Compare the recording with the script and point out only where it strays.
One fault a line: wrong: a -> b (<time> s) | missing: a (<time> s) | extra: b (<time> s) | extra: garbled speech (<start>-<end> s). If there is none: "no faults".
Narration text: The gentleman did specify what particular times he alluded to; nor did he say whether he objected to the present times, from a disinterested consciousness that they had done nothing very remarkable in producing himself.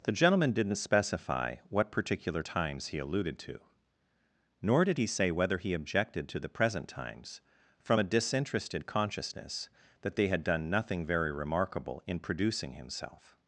wrong: did -> didn't (0.5 s)